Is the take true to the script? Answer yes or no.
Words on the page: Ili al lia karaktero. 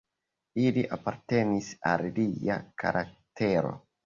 no